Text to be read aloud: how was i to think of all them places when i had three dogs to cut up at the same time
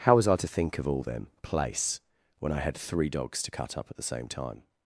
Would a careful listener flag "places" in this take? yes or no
yes